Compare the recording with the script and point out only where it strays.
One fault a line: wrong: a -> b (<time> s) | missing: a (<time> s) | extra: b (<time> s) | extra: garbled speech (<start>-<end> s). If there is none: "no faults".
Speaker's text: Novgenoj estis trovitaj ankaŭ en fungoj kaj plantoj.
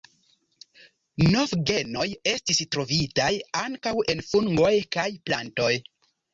no faults